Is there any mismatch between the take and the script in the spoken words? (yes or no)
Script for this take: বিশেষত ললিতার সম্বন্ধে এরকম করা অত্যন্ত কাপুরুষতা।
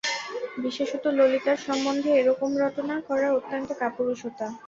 yes